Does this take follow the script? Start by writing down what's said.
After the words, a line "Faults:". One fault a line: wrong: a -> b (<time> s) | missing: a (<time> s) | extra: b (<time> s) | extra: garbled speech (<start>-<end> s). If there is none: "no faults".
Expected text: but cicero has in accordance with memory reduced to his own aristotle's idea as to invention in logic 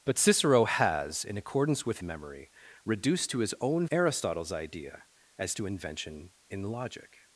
but cicero has in accordance with memory reduced to his own aristotle's idea as to invention in logic
Faults:
no faults